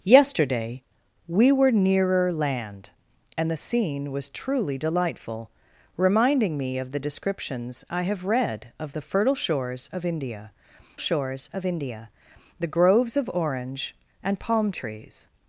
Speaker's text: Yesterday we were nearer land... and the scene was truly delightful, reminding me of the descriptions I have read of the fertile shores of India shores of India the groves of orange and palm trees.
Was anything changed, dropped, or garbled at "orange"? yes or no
no